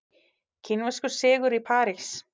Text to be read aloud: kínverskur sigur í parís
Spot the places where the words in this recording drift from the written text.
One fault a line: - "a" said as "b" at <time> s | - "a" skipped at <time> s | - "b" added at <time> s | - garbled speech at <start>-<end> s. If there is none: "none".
none